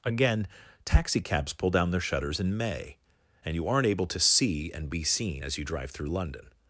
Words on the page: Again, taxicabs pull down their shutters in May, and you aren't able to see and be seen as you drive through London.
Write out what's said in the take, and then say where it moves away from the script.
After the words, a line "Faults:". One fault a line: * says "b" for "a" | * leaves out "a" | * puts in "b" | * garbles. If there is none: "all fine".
Again, taxicabs pull down their shutters in May, and you aren't able to see and be seen as you drive through London.
Faults:
all fine